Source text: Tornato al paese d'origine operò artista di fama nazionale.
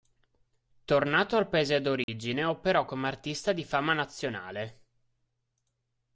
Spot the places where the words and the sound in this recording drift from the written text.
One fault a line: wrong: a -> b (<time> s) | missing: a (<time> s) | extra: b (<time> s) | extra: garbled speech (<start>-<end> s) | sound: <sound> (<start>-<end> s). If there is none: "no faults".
sound: dropout (2.0-2.1 s)
extra: come (2.9 s)